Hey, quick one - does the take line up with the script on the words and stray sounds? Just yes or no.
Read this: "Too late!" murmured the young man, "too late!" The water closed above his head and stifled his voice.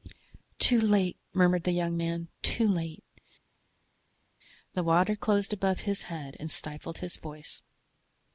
yes